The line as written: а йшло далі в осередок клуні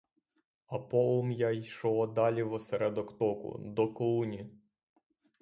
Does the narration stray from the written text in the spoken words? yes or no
yes